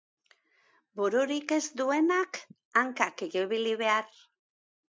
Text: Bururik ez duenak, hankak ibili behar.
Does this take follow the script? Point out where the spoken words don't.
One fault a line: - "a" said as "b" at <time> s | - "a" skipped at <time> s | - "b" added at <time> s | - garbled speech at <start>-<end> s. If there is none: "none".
none